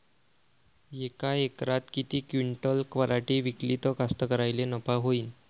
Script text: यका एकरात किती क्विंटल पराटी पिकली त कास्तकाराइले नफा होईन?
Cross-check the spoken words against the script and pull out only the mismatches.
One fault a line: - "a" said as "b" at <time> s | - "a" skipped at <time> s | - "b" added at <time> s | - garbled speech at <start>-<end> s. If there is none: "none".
none